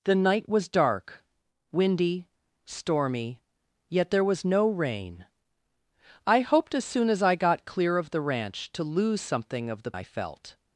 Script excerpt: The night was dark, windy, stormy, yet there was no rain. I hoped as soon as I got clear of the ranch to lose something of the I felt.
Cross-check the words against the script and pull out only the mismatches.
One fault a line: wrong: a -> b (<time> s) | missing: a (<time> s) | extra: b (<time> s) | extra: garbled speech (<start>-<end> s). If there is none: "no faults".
no faults